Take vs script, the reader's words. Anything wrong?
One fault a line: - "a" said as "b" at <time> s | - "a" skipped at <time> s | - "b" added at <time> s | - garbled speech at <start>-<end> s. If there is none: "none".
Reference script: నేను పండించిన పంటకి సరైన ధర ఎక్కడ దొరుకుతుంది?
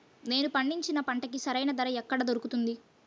none